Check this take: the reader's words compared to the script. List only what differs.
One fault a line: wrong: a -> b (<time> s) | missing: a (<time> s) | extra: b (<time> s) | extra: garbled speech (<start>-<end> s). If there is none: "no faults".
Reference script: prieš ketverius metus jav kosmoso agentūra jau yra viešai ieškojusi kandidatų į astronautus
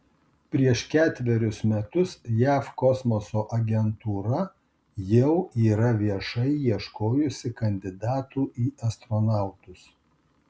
no faults